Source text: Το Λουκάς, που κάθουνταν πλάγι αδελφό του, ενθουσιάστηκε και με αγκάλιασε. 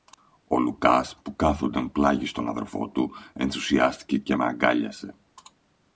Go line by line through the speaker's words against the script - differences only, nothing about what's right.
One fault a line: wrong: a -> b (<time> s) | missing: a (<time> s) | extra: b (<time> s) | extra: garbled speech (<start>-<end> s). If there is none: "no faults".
wrong: Το -> Ο (0.5 s)
extra: στον (2.2 s)